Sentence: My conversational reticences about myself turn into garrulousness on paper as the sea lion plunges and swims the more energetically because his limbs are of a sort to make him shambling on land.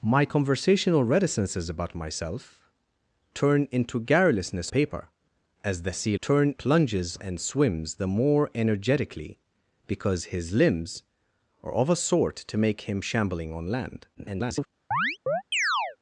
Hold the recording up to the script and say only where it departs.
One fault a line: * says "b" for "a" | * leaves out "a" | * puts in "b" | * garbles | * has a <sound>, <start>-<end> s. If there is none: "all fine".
* leaves out "on"
* says "turn" for "lion"
* garbles
* has a chirp, 14.9-16.0 s